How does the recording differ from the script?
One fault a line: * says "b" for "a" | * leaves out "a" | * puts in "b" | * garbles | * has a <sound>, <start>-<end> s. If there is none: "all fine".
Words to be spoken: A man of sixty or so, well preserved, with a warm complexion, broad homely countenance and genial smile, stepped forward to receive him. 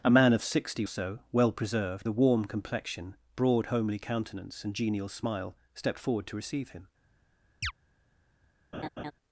* leaves out "or"
* leaves out "with"
* has a chirp, 7.6-7.7 s
* has a laugh, 8.7-9.1 s